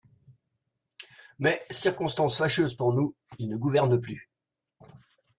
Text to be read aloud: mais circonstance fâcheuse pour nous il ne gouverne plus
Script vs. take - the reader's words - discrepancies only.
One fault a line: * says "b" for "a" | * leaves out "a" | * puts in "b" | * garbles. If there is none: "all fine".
all fine